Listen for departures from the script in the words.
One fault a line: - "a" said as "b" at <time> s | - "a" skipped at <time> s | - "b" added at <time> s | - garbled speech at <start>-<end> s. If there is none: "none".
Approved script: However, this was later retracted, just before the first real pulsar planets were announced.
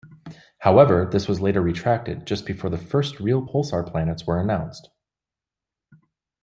none